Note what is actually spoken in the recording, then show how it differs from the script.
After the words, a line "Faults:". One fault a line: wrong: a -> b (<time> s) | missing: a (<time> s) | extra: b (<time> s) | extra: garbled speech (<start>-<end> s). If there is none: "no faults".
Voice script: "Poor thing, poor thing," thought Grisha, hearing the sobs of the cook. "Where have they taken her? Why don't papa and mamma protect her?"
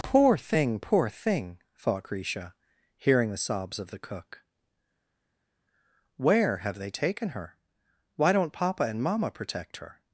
"Poor thing, poor thing," thought Grisha, hearing the sobs of the cook. "Where have they taken her? Why don't papa and mamma protect her?"
Faults:
no faults